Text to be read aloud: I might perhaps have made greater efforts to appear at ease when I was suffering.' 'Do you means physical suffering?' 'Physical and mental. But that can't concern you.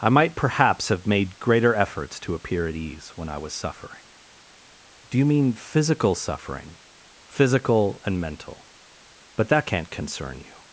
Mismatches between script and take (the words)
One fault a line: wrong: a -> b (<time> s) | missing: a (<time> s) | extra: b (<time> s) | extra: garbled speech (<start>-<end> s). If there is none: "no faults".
wrong: means -> mean (5.2 s)